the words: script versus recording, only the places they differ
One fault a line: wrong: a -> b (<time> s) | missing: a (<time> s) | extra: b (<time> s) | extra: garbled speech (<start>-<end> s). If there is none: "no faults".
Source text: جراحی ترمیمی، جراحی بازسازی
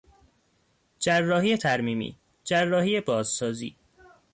no faults